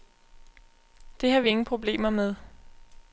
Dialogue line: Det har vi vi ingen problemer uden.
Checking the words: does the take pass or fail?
fail